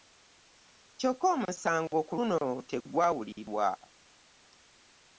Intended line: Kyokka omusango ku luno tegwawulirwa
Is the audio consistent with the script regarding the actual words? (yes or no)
yes